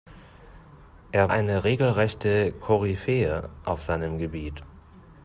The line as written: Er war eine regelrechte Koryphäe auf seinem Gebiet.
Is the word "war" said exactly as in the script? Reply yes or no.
no